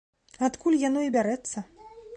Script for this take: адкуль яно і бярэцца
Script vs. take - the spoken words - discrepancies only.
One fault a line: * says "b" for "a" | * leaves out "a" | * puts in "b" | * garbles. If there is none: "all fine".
all fine